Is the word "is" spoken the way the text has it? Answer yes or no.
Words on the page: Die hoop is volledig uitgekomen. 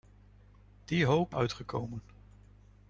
no